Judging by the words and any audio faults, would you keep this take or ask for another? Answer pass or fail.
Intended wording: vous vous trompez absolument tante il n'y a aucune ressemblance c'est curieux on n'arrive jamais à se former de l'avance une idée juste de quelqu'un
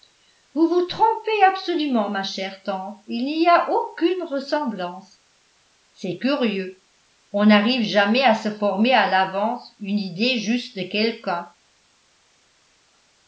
fail